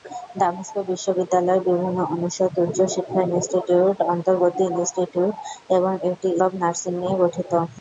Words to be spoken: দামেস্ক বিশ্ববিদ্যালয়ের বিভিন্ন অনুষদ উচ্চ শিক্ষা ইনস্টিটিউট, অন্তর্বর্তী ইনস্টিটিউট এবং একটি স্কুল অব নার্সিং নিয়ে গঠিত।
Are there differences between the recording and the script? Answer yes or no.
yes